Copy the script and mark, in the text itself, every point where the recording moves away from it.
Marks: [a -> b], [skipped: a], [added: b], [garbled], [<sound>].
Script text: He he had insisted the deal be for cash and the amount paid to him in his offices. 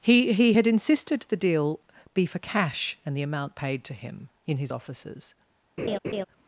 He he had insisted the deal be for cash and the amount paid to him in his offices. [laugh]